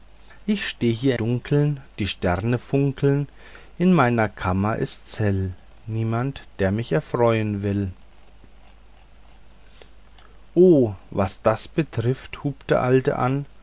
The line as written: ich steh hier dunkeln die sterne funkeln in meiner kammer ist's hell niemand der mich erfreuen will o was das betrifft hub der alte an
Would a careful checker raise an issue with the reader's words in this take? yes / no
no